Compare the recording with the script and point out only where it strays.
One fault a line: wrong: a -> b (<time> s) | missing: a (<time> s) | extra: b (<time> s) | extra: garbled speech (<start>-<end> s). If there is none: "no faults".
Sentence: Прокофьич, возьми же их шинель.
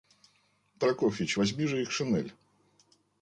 no faults